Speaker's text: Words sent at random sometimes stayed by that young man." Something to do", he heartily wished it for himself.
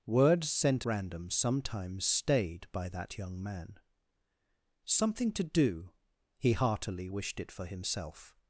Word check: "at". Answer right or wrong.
wrong